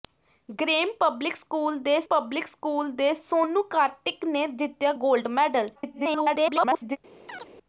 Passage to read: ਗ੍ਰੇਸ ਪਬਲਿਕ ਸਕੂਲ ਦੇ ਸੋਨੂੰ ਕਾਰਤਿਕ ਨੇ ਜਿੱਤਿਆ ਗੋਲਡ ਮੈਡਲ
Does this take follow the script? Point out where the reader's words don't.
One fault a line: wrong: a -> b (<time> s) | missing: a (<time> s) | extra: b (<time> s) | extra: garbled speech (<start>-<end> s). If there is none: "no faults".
extra: ਪਬਲਿਕ ਸਕੂਲ ਦੇ (2.1 s)
extra: garbled speech (5.8-7.0 s)